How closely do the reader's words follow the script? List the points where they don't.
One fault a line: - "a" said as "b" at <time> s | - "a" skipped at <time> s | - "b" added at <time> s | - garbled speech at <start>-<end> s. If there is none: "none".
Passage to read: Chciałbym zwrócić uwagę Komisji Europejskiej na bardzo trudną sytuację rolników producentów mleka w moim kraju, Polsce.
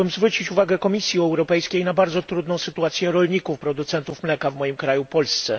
none